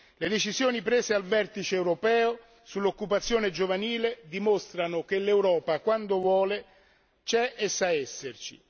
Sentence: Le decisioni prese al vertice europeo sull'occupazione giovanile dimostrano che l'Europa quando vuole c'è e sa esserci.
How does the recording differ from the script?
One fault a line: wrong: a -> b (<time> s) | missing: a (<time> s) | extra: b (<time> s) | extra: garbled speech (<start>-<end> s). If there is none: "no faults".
no faults